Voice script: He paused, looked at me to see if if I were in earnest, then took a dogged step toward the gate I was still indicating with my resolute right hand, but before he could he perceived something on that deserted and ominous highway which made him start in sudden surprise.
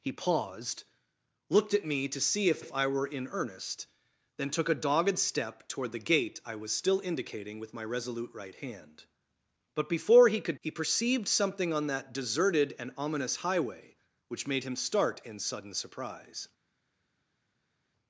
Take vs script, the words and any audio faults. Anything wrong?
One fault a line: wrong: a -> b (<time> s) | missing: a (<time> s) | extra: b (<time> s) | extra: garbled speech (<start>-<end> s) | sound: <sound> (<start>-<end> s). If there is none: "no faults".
no faults